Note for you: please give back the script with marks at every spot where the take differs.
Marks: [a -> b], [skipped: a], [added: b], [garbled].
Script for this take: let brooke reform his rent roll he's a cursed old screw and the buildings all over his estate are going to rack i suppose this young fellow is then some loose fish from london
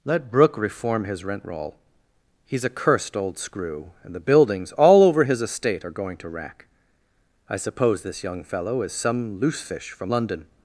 let brooke reform his rent roll he's a cursed old screw and the buildings all over his estate are going to rack i suppose this young fellow is [skipped: then] some loose fish from london